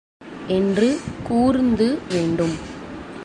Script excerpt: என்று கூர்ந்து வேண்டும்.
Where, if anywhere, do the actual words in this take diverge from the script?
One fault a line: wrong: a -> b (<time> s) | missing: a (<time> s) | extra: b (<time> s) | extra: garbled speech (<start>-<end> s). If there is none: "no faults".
no faults